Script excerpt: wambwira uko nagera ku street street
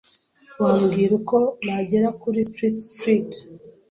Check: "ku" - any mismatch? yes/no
yes